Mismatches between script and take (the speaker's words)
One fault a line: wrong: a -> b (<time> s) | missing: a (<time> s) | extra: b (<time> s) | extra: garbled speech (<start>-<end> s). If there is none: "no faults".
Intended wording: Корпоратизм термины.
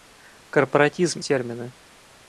no faults